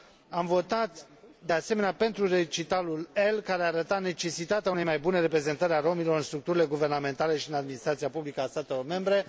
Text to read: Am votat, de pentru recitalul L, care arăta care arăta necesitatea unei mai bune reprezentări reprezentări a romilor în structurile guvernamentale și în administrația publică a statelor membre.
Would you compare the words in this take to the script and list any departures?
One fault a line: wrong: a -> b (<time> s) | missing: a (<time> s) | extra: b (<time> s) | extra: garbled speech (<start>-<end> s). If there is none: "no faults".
extra: asemenea (1.5 s)
missing: care arăta (4.0 s)
missing: reprezentări (5.7 s)